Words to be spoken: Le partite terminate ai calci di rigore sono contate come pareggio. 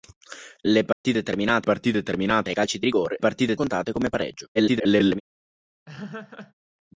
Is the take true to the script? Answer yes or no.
no